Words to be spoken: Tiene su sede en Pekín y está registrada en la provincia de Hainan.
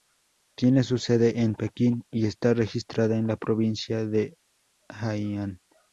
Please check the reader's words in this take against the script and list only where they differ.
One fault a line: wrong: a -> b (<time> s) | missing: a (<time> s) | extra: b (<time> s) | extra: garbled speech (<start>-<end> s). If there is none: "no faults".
no faults